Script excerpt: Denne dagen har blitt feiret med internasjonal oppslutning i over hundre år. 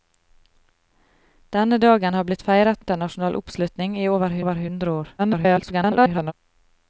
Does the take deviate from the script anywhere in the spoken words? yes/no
yes